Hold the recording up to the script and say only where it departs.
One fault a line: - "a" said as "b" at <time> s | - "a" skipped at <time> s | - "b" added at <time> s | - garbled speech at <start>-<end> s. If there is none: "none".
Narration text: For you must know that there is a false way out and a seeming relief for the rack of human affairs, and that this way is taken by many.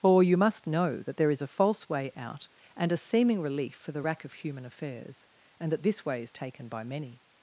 - "For" said as "Or" at 0.0 s